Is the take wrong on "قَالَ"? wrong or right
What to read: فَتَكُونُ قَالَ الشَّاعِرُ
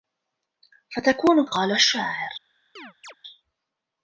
right